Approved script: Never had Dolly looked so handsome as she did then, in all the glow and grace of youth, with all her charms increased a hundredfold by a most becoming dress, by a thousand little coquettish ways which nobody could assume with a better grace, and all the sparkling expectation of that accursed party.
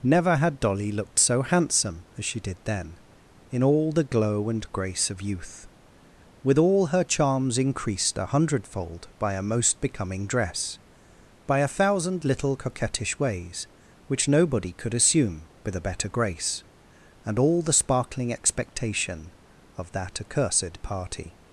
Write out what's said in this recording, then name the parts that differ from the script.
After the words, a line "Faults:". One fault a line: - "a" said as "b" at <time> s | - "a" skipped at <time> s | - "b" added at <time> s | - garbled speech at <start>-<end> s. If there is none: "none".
Never had Dolly looked so handsome as she did then, in all the glow and grace of youth, with all her charms increased a hundredfold by a most becoming dress, by a thousand little coquettish ways which nobody could assume with a better grace, and all the sparkling expectation of that accursed party.
Faults:
none